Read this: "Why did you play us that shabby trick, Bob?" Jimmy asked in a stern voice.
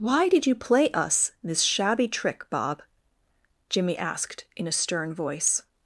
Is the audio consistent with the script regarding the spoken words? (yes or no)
no